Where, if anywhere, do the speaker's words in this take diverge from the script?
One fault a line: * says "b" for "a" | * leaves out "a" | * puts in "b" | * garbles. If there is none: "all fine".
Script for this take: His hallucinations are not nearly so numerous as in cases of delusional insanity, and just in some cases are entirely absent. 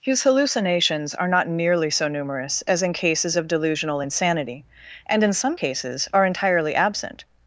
* leaves out "just"